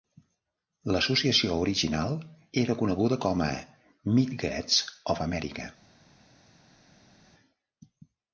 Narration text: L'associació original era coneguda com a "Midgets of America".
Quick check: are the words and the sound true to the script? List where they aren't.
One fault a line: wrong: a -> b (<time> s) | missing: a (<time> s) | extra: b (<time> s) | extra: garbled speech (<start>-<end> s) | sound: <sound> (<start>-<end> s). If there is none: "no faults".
no faults